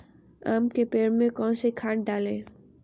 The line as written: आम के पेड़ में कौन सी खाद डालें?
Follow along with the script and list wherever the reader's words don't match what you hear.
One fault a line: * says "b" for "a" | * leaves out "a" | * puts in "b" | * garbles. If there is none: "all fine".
all fine